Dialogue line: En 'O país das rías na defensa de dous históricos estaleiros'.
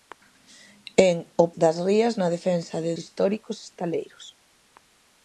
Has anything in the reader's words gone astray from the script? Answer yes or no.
yes